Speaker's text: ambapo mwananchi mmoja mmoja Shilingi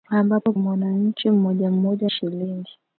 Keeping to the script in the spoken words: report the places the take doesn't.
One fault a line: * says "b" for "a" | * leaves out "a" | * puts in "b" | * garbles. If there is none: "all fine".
all fine